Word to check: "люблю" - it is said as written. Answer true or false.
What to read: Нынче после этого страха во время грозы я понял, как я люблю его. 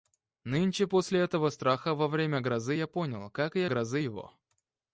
false